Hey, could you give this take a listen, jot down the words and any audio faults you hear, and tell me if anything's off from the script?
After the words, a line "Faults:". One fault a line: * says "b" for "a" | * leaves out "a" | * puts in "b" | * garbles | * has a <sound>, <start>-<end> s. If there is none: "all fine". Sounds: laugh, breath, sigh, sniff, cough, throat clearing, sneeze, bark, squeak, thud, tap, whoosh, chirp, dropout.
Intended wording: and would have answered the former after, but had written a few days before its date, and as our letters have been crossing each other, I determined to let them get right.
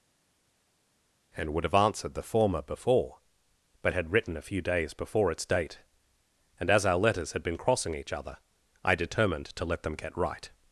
and would have answered the former before, but had written a few days before its date, and as our letters had been crossing each other, I determined to let them get right.
Faults:
* says "before" for "after"
* says "had" for "have"